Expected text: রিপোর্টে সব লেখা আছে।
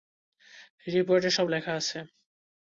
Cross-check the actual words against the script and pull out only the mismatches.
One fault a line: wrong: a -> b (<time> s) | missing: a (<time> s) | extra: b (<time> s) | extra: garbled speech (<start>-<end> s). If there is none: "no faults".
no faults